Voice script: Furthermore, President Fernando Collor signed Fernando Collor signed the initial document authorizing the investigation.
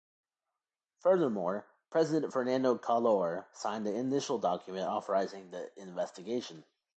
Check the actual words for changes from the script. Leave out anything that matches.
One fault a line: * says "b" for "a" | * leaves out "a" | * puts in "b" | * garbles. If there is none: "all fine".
* leaves out "Fernando Collor signed"